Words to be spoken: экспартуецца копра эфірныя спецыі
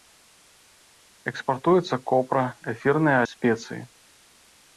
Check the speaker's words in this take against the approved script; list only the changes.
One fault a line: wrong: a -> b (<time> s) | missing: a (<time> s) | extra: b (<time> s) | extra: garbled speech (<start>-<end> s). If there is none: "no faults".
no faults